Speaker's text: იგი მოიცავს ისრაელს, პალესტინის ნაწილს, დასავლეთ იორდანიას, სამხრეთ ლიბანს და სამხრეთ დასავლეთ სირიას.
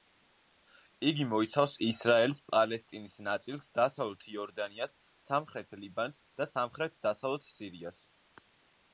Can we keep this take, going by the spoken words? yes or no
yes